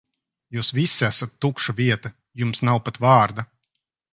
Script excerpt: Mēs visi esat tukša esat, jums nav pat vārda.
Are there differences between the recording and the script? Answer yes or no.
yes